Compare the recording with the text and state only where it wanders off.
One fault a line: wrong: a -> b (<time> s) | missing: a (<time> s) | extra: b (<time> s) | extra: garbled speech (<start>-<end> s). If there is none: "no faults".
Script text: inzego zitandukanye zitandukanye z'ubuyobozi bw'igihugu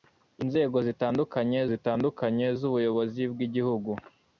no faults